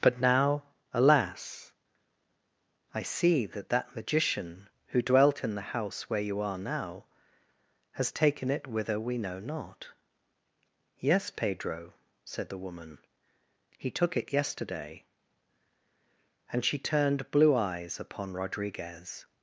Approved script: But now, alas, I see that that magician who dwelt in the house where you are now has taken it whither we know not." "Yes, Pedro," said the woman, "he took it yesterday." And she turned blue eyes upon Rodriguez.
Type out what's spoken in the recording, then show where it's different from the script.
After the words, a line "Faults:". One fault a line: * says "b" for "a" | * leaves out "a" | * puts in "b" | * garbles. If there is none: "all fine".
But now, alas, I see that that magician who dwelt in the house where you are now has taken it whither we know not." "Yes, Pedro," said the woman, "he took it yesterday." And she turned blue eyes upon Rodriguez.
Faults:
all fine